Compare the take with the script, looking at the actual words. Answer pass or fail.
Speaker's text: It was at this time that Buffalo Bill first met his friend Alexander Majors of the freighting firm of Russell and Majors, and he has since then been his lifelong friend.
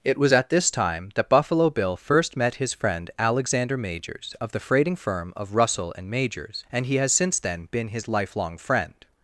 pass